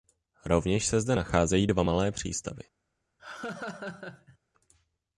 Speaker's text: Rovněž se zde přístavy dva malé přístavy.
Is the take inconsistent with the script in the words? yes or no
yes